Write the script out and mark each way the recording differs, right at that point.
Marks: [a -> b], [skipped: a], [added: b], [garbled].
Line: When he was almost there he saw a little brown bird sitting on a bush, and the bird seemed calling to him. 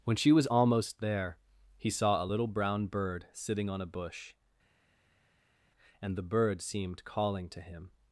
When [he -> she] was almost there he saw a little brown bird sitting on a bush, and the bird seemed calling to him.